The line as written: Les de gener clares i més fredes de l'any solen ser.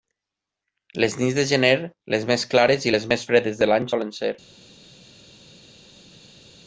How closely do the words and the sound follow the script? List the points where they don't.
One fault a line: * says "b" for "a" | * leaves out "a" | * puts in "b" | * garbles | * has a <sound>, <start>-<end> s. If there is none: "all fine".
* puts in "nits"
* puts in "les més"
* puts in "les"